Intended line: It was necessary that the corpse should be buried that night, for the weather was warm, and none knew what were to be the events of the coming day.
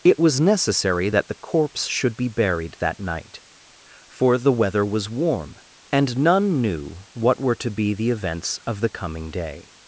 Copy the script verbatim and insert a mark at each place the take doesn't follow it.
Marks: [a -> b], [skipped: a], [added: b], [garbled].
It was necessary that the corpse should be buried that night, for the weather was warm, and none knew what were to be the events of the coming day.